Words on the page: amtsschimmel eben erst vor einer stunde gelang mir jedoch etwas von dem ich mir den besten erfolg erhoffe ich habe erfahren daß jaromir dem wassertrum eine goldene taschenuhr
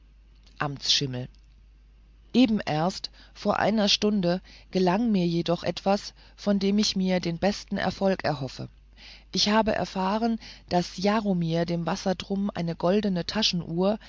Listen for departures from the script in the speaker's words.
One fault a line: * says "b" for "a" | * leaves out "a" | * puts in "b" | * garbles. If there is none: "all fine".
all fine